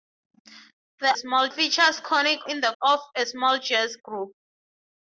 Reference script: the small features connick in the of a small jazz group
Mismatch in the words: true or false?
false